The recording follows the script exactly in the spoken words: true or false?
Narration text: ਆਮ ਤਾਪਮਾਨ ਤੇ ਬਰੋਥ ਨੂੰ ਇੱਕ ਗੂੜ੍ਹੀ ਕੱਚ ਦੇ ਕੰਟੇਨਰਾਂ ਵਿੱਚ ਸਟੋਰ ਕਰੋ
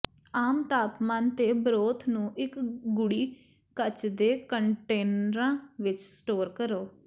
true